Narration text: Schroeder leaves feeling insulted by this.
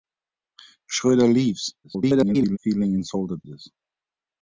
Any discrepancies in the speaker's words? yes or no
yes